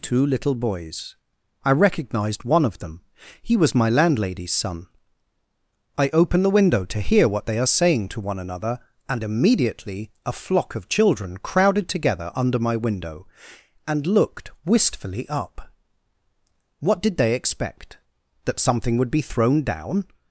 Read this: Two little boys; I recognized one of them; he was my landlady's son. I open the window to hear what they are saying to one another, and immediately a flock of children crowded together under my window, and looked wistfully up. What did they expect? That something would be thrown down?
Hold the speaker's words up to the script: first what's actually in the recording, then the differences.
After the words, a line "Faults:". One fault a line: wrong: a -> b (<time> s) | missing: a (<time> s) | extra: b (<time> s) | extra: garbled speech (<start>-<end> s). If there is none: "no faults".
Two little boys; I recognized one of them; he was my landlady's son. I open the window to hear what they are saying to one another, and immediately a flock of children crowded together under my window, and looked wistfully up. What did they expect? That something would be thrown down?
Faults:
no faults